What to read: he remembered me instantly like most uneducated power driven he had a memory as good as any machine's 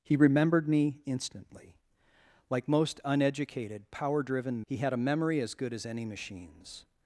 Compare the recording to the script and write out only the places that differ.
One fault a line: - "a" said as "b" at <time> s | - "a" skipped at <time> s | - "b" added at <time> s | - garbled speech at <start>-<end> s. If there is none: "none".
none